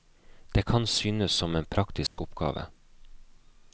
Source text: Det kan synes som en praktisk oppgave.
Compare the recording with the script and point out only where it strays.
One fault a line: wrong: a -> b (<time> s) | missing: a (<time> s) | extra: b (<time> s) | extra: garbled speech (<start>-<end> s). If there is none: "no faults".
no faults